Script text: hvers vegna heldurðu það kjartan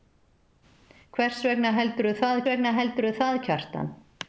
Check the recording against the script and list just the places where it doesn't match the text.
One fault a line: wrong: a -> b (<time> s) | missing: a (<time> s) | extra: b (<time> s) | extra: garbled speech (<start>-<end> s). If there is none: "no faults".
extra: vegna heldurðu það (2.5 s)